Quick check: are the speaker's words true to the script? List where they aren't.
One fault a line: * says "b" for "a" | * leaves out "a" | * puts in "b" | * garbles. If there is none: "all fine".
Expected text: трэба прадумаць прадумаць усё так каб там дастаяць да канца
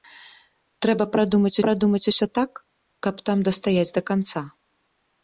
all fine